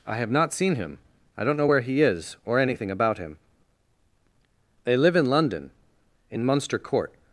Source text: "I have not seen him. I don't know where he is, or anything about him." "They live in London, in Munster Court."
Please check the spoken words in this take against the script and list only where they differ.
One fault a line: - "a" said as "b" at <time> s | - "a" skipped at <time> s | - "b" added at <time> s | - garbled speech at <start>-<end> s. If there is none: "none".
none